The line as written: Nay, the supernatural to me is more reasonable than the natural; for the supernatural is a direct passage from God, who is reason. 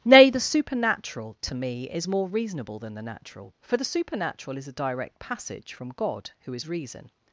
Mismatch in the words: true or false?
false